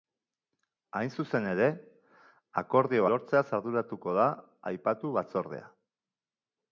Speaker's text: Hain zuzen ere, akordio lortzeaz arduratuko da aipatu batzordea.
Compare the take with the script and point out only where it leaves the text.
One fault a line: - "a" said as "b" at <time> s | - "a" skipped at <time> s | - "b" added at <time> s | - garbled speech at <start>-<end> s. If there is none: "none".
none